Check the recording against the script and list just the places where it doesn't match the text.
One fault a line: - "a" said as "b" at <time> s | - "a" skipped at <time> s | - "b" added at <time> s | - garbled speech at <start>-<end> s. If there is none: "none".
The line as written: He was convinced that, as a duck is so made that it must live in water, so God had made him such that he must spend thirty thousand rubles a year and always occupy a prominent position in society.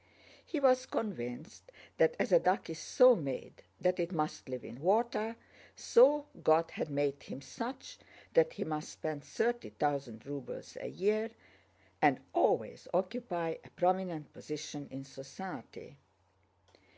none